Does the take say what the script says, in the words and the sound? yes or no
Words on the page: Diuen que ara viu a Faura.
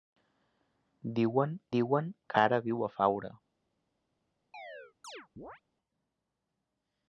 no